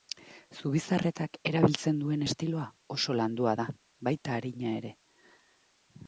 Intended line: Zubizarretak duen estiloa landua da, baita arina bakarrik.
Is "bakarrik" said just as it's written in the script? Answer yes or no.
no